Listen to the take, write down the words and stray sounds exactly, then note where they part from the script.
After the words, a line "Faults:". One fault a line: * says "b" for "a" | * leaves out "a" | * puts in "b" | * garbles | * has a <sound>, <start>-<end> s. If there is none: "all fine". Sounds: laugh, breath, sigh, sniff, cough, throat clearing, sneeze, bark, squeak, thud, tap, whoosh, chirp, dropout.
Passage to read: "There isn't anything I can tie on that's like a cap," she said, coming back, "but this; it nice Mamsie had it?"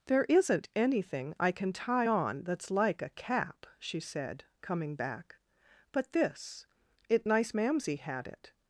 "There isn't anything I can tie on that's like a cap," she said, coming back, "but this; it nice Mamsie had it?"
Faults:
all fine